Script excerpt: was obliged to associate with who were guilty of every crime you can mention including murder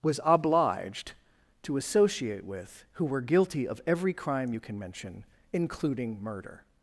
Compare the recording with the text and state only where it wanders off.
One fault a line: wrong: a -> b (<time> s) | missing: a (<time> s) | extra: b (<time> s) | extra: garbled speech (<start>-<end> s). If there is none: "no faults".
no faults